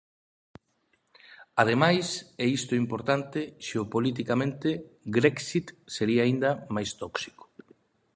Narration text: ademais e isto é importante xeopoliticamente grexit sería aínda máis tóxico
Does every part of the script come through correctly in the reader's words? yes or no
yes